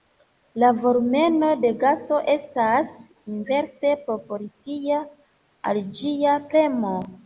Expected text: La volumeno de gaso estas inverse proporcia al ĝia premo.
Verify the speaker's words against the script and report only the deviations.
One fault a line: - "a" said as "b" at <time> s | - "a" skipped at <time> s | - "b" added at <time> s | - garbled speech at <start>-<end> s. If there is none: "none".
none